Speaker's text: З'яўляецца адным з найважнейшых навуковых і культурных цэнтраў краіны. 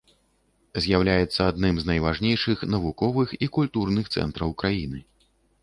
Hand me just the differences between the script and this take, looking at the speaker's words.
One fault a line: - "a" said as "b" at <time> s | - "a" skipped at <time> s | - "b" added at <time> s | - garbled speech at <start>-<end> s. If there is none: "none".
none